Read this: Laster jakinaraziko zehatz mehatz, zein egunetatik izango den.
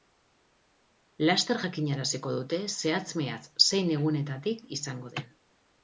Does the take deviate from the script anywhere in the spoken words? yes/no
yes